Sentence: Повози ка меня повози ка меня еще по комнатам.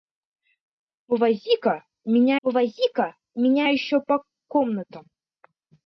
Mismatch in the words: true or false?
false